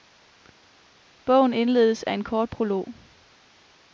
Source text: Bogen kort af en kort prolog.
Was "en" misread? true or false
false